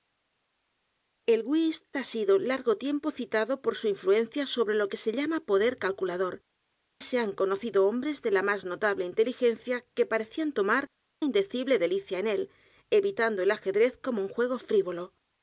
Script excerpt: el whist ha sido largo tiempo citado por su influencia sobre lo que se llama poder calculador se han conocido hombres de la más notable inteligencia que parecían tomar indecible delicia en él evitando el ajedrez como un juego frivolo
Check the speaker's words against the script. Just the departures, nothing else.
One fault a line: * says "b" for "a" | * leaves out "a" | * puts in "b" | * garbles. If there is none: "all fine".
all fine